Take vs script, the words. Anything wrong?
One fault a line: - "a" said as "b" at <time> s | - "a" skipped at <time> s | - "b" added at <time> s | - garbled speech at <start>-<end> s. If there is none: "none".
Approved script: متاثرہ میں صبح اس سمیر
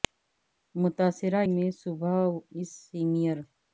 none